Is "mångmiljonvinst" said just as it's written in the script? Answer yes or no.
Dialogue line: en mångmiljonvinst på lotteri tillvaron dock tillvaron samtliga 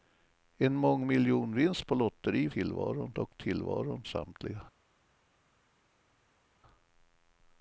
yes